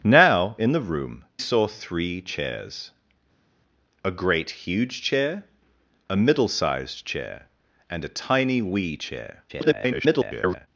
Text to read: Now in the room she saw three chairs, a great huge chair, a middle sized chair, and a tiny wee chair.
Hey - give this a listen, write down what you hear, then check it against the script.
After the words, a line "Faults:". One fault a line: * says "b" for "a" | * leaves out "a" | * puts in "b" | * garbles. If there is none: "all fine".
Now in the room saw three chairs, a great huge chair, a middle sized chair, and a tiny wee chair. [garbled]
Faults:
* leaves out "she"
* garbles